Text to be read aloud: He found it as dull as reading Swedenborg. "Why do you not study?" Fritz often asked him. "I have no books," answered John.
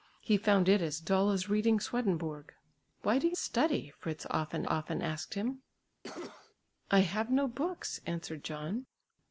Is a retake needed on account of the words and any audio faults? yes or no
yes